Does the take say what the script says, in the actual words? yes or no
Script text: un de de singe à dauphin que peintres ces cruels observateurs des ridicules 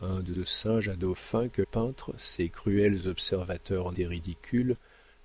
yes